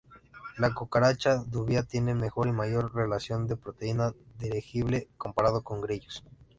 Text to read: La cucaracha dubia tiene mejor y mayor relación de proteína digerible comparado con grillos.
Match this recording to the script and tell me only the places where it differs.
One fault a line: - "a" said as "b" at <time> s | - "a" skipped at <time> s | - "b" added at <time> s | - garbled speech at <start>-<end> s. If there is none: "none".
none